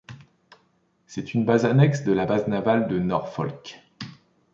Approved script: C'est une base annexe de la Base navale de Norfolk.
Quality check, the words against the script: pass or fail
pass